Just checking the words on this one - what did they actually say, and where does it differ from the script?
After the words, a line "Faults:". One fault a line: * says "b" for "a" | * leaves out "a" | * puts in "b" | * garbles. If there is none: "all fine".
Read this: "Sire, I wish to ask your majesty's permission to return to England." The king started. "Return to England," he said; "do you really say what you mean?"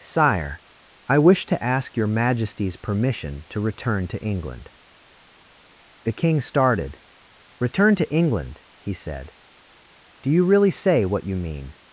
"Sire, I wish to ask your majesty's permission to return to England." The king started. "Return to England," he said; "do you really say what you mean?"
Faults:
all fine